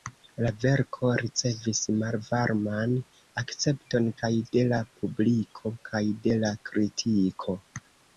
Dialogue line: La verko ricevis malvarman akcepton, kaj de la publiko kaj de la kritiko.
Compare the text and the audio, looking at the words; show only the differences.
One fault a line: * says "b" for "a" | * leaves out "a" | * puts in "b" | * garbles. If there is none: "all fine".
all fine